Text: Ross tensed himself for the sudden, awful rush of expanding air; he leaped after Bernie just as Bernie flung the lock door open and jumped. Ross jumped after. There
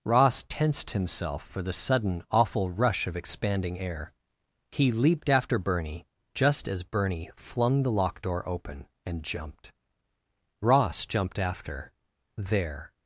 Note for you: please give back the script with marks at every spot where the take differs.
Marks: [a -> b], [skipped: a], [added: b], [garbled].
Ross tensed himself for the sudden, awful rush of expanding air; he leaped after Bernie just as Bernie flung the lock door open and jumped. Ross jumped after. There